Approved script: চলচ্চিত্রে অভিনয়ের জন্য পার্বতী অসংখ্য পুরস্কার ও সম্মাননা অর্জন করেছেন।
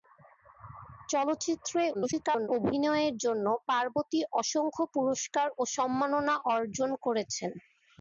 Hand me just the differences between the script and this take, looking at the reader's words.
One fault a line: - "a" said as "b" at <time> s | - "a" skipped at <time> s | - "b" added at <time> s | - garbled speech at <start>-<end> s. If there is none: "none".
- garbled speech at 1.9-2.5 s